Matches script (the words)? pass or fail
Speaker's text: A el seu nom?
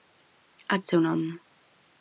pass